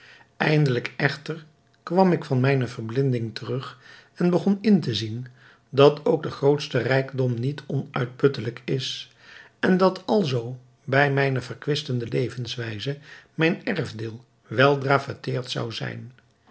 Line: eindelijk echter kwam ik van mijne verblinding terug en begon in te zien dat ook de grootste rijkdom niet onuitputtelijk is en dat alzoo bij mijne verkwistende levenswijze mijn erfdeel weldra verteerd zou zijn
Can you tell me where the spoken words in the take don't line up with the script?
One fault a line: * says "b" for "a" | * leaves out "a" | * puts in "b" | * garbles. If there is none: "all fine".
all fine